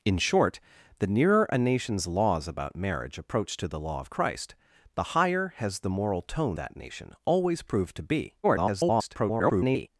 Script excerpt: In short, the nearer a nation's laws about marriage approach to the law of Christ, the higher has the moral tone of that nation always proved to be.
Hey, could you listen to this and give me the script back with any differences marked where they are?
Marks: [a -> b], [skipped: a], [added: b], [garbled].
In short, the nearer a nation's laws about marriage approach to the law of Christ, the higher has the moral tone [skipped: of] that nation always proved to be. [garbled]